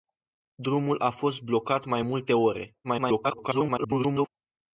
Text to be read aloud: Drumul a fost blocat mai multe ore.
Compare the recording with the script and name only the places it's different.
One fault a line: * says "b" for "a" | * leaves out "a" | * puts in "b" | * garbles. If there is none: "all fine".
* garbles